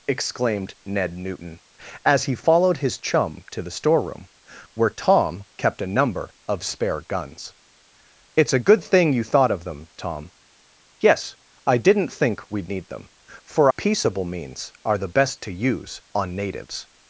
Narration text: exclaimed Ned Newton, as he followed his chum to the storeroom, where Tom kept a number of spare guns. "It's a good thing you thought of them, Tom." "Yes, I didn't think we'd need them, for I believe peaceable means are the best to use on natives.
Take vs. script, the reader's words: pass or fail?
fail